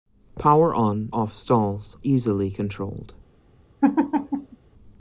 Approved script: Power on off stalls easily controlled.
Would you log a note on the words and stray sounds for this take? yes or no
yes